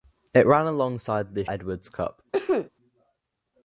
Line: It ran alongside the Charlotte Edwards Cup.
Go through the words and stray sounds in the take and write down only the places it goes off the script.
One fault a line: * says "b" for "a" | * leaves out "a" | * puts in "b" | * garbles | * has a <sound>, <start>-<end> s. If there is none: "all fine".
* leaves out "Charlotte"
* has a sneeze, 2.3-2.7 s